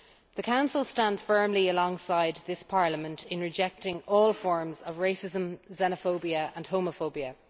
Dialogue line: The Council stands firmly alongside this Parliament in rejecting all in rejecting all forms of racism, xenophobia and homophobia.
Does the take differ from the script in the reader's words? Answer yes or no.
yes